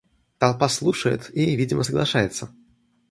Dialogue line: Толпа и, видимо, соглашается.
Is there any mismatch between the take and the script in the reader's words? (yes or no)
yes